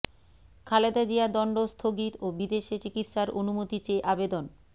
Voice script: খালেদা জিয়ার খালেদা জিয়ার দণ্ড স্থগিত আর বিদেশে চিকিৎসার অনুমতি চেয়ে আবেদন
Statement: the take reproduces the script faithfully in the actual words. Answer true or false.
false